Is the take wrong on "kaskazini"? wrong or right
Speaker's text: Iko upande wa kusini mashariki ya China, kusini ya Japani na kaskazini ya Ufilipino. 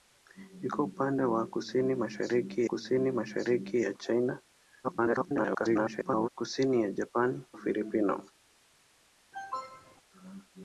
wrong